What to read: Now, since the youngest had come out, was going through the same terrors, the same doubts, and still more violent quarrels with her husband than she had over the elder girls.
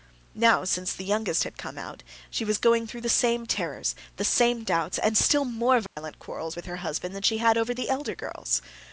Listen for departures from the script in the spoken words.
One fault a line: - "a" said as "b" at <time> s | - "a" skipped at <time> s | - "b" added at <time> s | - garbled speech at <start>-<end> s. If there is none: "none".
- "she" added at 2.3 s